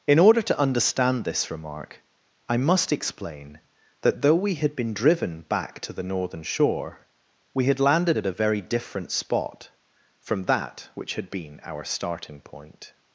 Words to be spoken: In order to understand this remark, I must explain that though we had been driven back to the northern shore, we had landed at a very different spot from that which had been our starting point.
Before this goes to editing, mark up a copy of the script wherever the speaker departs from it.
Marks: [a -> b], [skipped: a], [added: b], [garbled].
In order to understand this remark, I must explain that though we had been driven back to the northern shore, we had landed at a very different spot from that which had been our starting point.